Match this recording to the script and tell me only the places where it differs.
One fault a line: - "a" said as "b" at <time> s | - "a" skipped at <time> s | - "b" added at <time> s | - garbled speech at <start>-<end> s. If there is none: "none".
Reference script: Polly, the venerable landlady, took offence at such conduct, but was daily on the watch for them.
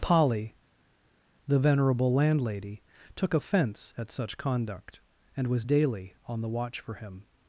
- "but" said as "and" at 5.3 s
- "them" said as "him" at 6.9 s